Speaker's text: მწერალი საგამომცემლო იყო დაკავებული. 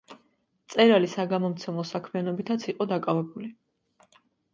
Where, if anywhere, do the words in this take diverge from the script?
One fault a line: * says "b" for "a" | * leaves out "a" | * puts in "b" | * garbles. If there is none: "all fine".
* puts in "საქმიანობითაც"